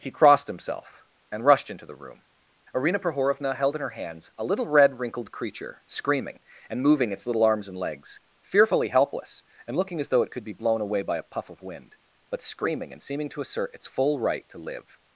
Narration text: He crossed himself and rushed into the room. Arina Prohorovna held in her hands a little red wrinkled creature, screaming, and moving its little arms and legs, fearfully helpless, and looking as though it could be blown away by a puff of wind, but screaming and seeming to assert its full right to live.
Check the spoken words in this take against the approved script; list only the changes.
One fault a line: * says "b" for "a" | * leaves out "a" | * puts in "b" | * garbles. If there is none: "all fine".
all fine